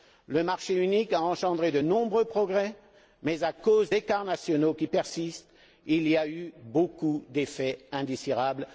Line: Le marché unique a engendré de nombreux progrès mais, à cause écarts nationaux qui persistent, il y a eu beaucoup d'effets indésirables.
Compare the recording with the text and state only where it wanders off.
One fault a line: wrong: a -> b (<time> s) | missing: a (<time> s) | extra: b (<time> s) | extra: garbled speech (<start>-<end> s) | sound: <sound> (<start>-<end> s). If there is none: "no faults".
no faults